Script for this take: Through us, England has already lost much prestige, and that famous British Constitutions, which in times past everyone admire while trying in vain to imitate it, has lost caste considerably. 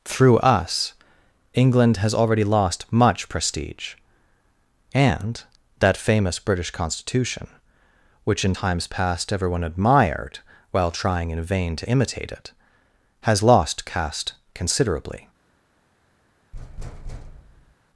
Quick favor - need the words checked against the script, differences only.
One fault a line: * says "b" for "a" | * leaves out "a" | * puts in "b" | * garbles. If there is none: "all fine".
* says "Constitution" for "Constitutions"
* says "admired" for "admire"